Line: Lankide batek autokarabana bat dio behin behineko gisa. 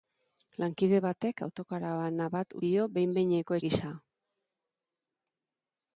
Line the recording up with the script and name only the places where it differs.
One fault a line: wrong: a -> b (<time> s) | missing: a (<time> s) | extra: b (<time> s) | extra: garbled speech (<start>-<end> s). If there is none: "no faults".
no faults